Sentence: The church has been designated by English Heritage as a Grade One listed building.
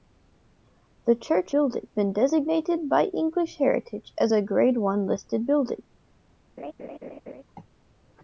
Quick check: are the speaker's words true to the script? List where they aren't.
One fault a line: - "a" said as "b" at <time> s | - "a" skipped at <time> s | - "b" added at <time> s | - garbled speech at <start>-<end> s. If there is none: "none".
- "has" said as "building" at 1.5 s